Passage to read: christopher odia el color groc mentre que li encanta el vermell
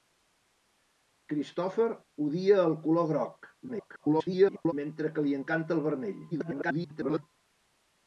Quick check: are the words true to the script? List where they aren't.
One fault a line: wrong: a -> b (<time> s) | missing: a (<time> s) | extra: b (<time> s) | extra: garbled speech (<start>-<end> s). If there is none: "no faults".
extra: garbled speech (3.7-4.7 s)
extra: garbled speech (6.3-7.2 s)